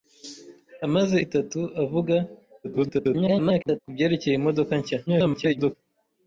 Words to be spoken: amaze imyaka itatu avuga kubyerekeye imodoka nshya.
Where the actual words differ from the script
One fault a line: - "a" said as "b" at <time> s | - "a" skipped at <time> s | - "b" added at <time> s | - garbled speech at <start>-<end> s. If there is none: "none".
- "imyaka" skipped at 1.2 s
- garbled speech at 2.6-3.8 s
- garbled speech at 5.1-5.7 s